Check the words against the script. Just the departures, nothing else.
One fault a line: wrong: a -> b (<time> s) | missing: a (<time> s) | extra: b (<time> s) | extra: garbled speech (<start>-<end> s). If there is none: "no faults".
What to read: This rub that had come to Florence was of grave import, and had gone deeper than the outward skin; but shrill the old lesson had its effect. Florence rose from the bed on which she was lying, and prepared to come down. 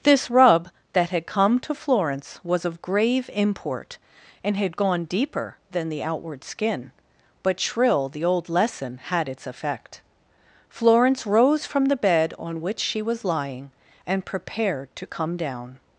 no faults